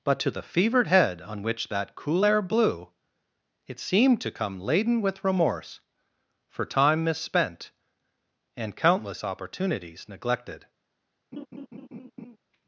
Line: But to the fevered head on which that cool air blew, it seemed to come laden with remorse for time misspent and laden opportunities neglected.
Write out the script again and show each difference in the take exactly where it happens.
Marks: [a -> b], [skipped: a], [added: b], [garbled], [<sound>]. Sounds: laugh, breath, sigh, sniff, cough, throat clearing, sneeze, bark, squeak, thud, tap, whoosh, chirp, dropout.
But to the fevered head on which that cool air blew, it seemed to come laden with remorse for time misspent and [laden -> countless] opportunities neglected. [laugh]